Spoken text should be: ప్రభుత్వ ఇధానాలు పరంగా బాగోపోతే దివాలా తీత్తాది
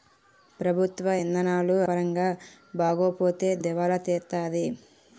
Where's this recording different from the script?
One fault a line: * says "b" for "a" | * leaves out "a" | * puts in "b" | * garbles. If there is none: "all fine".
all fine